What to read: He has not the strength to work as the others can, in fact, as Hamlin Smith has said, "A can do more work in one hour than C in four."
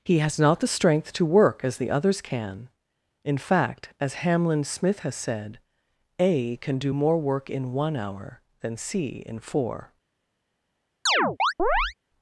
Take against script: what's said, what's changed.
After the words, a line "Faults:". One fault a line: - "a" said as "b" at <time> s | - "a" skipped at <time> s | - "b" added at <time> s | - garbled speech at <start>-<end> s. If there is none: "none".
He has not the strength to work as the others can, in fact, as Hamlin Smith has said, "A can do more work in one hour than C in four."
Faults:
none